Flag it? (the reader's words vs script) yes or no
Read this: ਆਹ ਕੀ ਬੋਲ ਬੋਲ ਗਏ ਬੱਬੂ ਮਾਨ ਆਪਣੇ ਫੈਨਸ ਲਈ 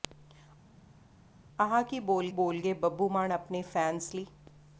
no